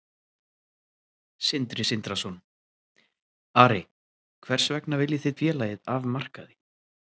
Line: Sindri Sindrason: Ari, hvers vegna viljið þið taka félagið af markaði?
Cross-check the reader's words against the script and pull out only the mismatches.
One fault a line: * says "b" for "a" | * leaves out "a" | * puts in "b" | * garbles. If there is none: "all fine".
* leaves out "taka"